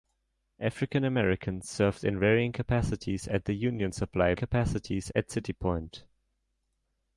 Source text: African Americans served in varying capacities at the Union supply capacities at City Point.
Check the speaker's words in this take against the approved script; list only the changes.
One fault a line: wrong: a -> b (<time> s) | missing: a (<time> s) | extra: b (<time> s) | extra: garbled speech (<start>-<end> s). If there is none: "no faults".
no faults